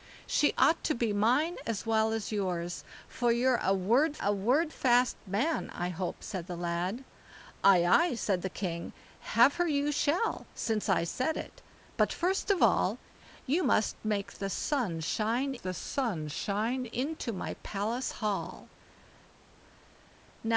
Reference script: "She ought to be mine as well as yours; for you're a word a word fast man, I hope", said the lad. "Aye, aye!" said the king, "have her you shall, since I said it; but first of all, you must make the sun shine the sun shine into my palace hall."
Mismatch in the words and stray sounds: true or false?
false